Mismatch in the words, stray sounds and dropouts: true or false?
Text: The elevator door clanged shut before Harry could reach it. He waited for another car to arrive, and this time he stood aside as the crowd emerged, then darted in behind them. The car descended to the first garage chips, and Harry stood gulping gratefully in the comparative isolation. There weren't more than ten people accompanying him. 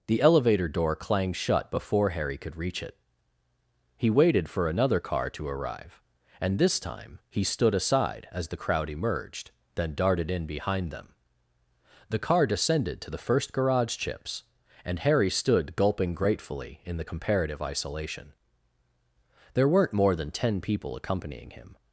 false